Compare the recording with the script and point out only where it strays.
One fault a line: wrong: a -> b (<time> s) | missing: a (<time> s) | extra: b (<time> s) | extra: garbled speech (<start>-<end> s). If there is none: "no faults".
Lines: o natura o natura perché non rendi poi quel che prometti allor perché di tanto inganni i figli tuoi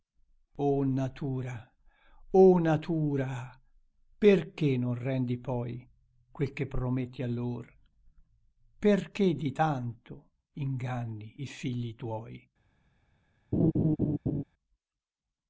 no faults